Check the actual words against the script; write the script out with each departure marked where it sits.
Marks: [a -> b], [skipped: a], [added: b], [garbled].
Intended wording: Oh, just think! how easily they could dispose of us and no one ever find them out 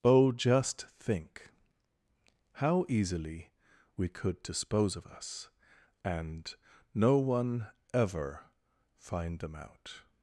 Oh, just think! how easily [they -> we] could dispose of us and no one ever find them out